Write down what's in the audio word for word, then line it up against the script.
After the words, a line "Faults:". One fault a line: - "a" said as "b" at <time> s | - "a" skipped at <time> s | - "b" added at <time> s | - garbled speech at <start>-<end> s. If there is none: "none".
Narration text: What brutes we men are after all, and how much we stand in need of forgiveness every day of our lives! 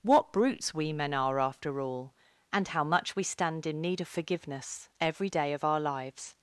What brutes we men are after all, and how much we stand in need of forgiveness every day of our lives!
Faults:
none